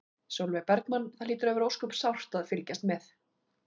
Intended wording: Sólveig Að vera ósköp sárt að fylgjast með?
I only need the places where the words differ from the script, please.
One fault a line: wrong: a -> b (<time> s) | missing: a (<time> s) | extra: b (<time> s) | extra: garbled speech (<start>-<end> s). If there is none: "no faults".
extra: Bergmann Það hlýtur (0.7 s)